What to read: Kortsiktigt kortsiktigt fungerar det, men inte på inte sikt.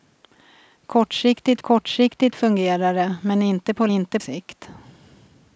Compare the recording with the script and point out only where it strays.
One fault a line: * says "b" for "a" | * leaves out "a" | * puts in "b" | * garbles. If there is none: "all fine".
all fine